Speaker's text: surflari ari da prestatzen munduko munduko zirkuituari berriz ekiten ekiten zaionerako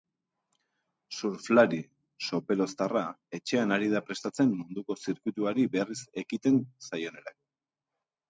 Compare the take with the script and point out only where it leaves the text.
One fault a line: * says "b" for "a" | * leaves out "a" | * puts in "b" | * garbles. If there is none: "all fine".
* puts in "sopeloztarra etxean"
* leaves out "munduko"
* leaves out "ekiten"